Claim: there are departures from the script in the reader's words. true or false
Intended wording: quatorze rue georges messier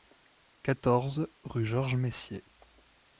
false